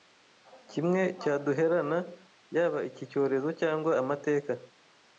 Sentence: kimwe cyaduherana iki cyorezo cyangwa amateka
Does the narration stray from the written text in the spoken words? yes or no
yes